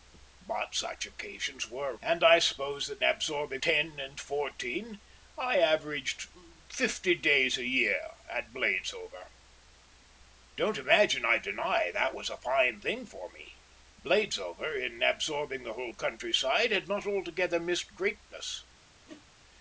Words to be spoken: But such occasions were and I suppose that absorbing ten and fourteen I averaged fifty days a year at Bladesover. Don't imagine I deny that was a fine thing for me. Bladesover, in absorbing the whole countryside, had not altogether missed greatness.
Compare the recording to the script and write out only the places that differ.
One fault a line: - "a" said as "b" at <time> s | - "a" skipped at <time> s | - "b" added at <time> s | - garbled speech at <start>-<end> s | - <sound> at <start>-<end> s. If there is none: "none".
- whoosh at 19.1-19.3 s